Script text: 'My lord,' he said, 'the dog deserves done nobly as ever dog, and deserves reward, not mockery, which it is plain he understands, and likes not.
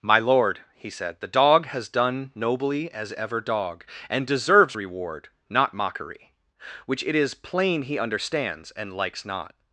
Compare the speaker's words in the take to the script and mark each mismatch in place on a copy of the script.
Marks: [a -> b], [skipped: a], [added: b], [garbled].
'My lord,' he said, 'the dog [deserves -> has] done nobly as ever dog, and deserves reward, not mockery, which it is plain he understands, and likes not.